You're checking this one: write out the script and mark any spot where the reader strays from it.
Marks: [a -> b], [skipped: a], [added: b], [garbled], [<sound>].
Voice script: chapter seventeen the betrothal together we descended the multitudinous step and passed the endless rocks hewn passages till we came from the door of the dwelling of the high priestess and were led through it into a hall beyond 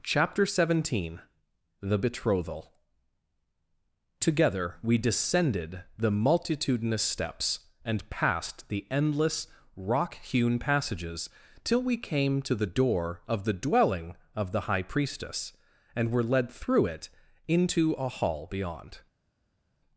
chapter seventeen the betrothal together we descended the multitudinous [step -> steps] and passed the endless [rocks -> rock] hewn passages till we came [from -> to] the door of the dwelling of the high priestess and were led through it into a hall beyond